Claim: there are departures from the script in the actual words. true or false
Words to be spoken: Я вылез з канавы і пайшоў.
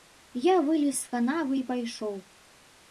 false